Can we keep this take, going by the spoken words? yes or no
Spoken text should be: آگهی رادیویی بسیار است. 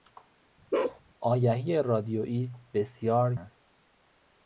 yes